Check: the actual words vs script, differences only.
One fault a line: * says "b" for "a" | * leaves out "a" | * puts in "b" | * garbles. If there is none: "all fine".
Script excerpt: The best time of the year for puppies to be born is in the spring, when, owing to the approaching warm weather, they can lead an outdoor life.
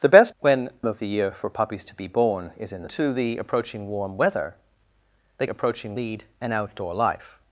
* says "when" for "time"
* leaves out "spring when owing"
* says "approaching" for "can"